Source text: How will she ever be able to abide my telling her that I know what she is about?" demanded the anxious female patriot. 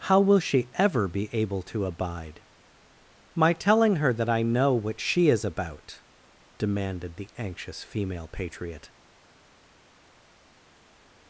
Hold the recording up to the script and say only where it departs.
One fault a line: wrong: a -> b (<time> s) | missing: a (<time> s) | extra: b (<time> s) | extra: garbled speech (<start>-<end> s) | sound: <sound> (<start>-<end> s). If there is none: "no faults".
no faults